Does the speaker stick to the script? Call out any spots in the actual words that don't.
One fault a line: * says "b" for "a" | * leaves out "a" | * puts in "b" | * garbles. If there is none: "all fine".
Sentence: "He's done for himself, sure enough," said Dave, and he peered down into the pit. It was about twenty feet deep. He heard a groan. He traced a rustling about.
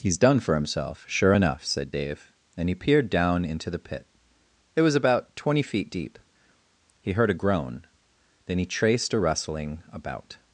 * puts in "Then"